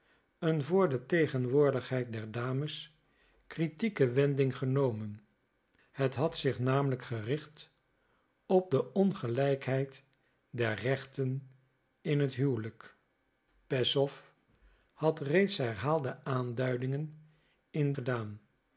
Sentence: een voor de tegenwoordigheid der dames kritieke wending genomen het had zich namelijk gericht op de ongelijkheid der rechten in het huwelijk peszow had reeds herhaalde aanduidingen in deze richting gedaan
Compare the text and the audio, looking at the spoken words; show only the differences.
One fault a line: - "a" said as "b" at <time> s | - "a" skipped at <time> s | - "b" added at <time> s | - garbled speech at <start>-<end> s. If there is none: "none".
- "deze richting" skipped at 17.9 s